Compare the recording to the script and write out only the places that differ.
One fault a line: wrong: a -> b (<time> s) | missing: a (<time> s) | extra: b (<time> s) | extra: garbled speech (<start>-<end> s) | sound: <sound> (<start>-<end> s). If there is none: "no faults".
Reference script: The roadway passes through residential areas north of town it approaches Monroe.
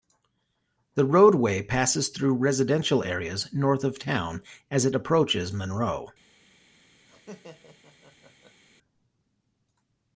extra: as (4.7 s)
sound: laugh (7.1-8.6 s)